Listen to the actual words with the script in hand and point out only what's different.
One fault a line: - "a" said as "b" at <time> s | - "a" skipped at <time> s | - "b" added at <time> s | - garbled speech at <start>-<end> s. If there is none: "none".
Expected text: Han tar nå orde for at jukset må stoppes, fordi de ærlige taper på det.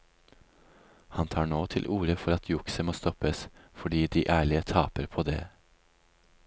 - "til" added at 1.7 s